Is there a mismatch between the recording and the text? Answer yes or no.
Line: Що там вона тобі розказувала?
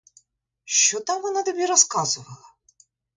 no